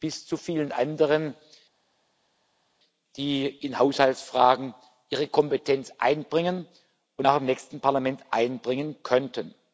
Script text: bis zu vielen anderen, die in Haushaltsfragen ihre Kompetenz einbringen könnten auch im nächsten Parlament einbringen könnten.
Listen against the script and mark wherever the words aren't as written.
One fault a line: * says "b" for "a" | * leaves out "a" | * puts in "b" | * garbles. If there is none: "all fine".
* says "und" for "könnten"